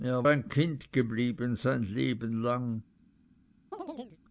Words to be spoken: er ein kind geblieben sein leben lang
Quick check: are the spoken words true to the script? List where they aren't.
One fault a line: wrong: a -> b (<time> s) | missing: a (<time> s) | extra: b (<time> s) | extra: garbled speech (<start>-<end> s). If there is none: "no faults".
no faults